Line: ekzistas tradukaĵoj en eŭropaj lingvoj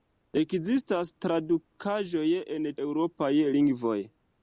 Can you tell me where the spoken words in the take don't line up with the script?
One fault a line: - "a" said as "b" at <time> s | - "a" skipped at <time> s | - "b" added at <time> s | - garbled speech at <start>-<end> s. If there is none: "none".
none